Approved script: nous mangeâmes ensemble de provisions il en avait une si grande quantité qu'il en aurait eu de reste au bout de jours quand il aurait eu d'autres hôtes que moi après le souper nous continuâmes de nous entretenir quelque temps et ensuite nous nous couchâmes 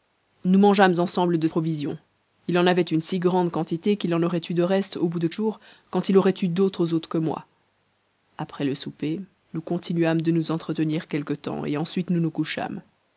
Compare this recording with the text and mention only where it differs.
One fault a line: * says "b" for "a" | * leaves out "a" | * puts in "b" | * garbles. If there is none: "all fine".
all fine